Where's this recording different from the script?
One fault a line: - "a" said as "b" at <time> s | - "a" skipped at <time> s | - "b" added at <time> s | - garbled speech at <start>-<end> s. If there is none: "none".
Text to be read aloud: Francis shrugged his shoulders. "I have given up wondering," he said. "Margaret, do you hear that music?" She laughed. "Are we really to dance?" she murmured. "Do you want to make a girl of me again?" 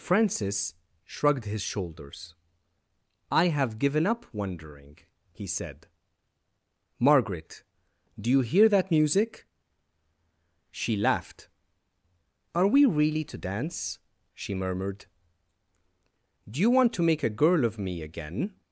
none